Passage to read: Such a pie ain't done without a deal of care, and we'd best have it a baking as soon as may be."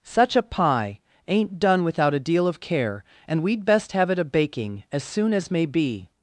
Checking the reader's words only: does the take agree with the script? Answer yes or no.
yes